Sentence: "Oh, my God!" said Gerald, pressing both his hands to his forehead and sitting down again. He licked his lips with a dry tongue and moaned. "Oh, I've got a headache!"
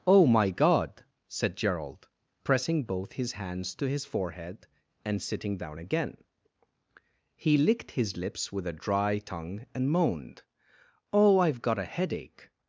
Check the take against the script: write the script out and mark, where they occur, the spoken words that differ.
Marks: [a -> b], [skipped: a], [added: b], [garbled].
"Oh, my God!" said Gerald, pressing both his hands to his forehead and sitting down again. He licked his lips with a dry tongue and moaned. "Oh, I've got a headache!"